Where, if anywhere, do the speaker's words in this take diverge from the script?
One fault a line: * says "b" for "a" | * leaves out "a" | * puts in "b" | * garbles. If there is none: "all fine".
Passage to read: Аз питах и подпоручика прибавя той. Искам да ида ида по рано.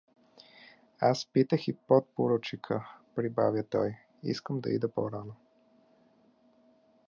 * leaves out "ида"